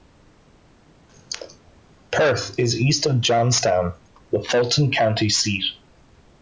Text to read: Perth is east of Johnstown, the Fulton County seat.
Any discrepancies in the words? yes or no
no